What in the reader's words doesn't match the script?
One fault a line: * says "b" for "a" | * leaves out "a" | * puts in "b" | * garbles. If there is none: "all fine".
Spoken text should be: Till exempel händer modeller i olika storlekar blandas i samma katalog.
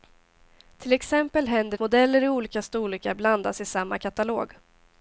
all fine